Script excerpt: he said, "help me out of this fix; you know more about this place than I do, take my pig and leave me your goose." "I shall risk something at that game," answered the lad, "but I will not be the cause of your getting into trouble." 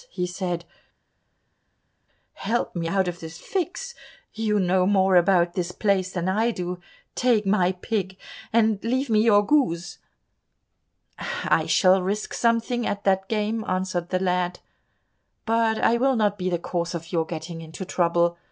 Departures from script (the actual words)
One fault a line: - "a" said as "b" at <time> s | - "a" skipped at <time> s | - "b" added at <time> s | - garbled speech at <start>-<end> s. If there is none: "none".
none